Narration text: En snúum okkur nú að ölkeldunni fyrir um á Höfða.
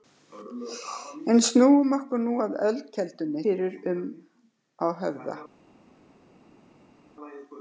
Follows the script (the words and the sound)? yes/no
yes